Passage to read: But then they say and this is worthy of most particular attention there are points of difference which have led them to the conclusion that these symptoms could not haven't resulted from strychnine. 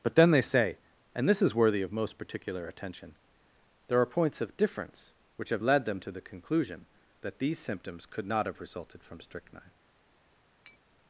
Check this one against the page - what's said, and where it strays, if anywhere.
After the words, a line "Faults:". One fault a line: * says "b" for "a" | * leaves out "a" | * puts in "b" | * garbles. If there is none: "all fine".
But then they say and this is worthy of most particular attention there are points of difference which have led them to the conclusion that these symptoms could not have resulted from strychnine.
Faults:
* says "have" for "haven't"